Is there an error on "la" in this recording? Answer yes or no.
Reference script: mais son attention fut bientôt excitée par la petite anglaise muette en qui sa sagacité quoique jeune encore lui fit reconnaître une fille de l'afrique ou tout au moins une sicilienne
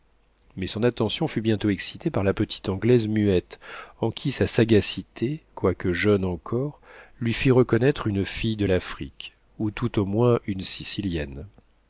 no